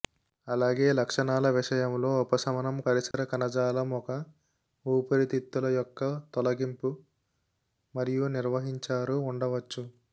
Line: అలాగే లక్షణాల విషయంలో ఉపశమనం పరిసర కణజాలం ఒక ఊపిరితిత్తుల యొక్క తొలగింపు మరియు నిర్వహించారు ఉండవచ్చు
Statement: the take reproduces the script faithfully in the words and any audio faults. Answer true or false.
false